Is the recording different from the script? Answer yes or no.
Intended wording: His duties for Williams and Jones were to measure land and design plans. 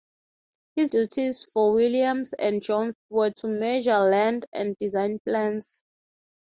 no